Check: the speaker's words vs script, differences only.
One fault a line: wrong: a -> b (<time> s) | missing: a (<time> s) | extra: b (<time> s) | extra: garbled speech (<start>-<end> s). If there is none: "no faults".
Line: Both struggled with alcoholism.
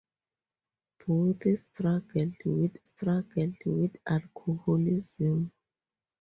extra: struggled with (2.8 s)